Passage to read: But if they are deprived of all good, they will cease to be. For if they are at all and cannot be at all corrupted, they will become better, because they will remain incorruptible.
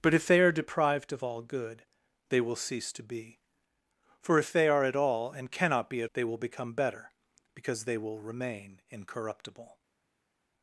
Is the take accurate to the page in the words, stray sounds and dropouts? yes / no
no